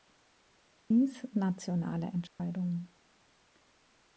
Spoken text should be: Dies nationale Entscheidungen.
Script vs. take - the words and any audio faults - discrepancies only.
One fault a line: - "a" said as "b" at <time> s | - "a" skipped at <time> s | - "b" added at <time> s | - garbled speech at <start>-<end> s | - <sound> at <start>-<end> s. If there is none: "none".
- dropout at 2.3-2.4 s